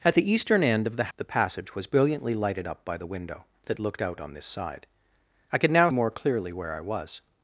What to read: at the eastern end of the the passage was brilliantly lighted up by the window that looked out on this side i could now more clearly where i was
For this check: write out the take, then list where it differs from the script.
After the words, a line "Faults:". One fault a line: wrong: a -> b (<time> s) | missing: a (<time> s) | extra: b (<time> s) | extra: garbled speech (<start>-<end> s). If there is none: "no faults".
at the eastern end of the the passage was brilliantly lighted up by the window that looked out on this side i could now more clearly where i was
Faults:
no faults